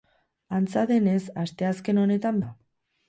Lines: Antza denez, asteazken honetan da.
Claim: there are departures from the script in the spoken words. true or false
false